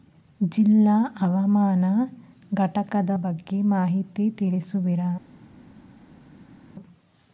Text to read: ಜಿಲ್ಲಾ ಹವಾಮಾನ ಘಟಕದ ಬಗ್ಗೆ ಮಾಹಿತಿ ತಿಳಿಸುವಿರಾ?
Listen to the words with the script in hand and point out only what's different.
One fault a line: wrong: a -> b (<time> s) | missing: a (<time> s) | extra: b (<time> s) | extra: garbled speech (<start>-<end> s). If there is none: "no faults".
no faults